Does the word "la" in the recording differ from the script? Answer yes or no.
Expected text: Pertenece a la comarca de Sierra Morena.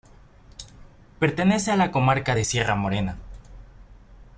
no